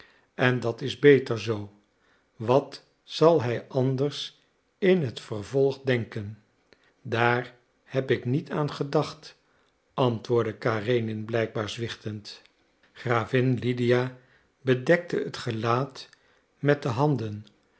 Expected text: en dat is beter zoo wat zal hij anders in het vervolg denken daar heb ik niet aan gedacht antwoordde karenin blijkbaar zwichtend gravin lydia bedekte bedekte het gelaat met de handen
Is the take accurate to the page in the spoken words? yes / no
no